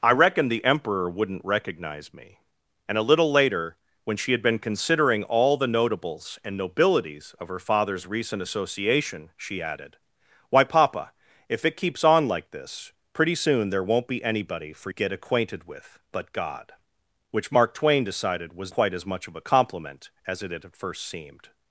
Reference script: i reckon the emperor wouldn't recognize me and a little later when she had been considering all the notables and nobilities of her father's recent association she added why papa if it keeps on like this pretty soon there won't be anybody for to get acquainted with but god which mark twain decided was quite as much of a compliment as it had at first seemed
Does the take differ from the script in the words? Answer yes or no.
no